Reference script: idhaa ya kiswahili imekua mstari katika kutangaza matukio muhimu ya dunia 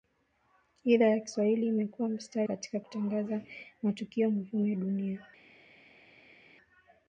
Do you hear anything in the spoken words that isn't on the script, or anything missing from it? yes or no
no